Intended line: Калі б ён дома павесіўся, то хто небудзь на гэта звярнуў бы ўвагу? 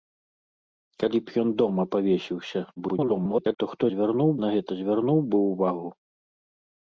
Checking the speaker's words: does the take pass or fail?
fail